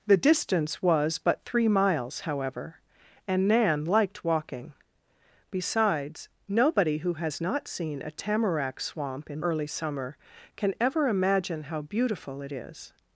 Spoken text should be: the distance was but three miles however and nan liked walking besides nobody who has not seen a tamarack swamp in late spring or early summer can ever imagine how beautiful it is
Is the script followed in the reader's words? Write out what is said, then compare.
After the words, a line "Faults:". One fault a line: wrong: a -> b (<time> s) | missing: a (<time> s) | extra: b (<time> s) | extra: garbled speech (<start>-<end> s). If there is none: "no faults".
the distance was but three miles however and nan liked walking besides nobody who has not seen a tamarack swamp in early summer can ever imagine how beautiful it is
Faults:
missing: late spring or (9.4 s)